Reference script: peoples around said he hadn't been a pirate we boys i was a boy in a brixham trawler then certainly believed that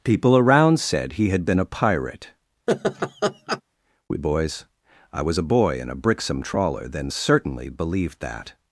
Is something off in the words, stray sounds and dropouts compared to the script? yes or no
yes